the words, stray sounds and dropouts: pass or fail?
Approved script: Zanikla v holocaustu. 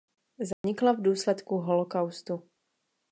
fail